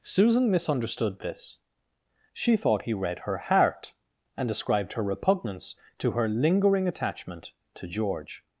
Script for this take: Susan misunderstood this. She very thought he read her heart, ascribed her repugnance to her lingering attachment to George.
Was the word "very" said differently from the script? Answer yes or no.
yes